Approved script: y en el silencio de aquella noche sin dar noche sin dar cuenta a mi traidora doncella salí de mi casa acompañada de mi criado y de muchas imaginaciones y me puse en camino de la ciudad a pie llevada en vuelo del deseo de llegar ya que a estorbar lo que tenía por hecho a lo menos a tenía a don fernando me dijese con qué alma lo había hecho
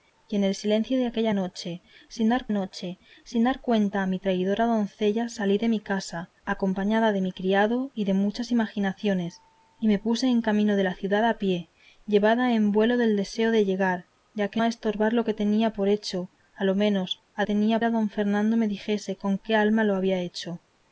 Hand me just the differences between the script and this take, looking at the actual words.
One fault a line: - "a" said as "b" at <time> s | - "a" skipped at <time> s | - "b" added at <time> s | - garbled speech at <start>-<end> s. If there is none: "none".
none